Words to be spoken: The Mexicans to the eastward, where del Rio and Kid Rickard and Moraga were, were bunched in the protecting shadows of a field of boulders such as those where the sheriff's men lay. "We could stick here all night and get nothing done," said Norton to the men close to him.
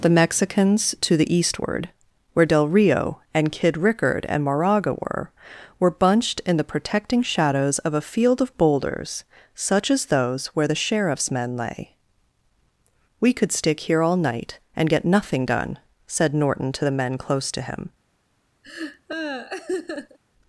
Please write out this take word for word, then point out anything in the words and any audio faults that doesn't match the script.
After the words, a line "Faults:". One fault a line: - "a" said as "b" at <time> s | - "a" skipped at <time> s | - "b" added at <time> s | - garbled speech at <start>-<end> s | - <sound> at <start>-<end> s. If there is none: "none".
The Mexicans to the eastward, where del Rio and Kid Rickard and Moraga were, were bunched in the protecting shadows of a field of boulders such as those where the sheriff's men lay. "We could stick here all night and get nothing done," said Norton to the men close to him.
Faults:
- laugh at 18.6-20.2 s